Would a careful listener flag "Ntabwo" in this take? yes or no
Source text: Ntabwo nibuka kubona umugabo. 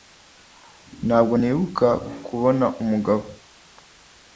no